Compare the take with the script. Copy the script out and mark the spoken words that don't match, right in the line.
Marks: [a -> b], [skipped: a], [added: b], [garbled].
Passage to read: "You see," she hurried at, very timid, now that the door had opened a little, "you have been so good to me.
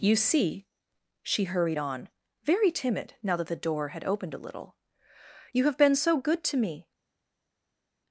"You see," she hurried [at, -> on] very timid, now that the door had opened a little, "you have been so good to me.